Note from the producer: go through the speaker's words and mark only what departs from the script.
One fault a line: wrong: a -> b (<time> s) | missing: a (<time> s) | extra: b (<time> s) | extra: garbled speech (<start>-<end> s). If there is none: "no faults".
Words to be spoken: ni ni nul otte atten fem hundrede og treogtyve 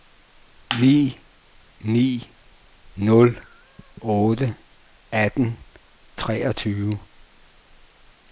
missing: fem hundrede og (5.6 s)